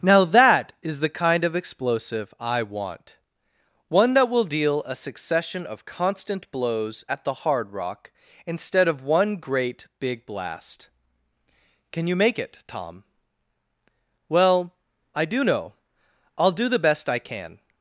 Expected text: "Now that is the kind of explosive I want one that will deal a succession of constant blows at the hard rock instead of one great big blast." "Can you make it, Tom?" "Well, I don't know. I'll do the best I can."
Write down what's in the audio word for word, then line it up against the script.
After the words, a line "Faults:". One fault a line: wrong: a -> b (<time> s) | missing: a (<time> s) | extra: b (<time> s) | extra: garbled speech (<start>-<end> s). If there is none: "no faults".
"Now that is the kind of explosive I want one that will deal a succession of constant blows at the hard rock instead of one great big blast." "Can you make it, Tom?" "Well, I do know. I'll do the best I can."
Faults:
wrong: don't -> do (15.2 s)